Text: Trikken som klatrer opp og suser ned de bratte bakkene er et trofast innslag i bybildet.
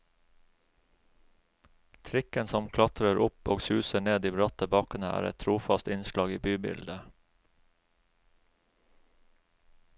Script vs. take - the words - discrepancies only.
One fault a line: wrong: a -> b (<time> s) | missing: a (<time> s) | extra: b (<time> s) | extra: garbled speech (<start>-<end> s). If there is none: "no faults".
no faults